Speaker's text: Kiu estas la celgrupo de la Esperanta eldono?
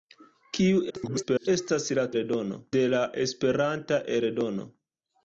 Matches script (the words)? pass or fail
fail